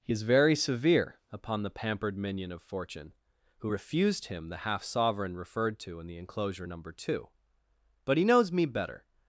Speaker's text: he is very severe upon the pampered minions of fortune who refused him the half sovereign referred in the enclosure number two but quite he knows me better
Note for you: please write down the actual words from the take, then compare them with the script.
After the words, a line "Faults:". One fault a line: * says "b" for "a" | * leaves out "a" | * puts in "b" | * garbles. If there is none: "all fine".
he is very severe upon the pampered minion of fortune who refused him the half sovereign referred to in the enclosure number two but he knows me better
Faults:
* says "minion" for "minions"
* puts in "to"
* leaves out "quite"